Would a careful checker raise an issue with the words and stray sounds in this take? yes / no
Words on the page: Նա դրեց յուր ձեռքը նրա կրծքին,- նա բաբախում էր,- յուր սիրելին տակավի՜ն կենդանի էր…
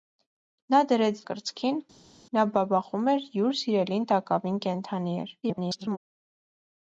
yes